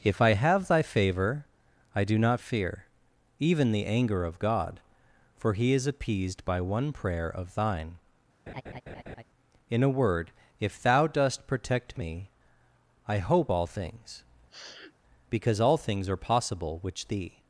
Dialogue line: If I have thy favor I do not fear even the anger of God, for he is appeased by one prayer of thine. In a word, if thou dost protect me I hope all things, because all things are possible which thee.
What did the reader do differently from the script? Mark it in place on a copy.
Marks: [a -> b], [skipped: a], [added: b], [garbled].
If I have thy favor I do not fear even the anger of God, for he is appeased by one prayer of thine. In a word, if thou dost protect me I hope all things, because all things are possible which thee.